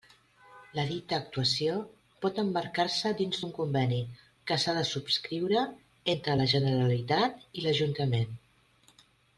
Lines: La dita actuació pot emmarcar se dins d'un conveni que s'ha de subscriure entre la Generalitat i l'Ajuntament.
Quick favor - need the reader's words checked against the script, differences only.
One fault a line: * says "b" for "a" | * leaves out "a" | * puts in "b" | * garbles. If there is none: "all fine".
all fine